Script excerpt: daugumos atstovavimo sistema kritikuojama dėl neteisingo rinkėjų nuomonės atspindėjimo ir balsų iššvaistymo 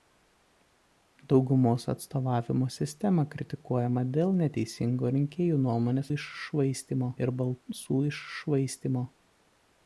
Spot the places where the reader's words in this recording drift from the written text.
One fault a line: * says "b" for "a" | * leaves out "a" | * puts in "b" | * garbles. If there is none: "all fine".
* says "iššvaistymo" for "atspindėjimo"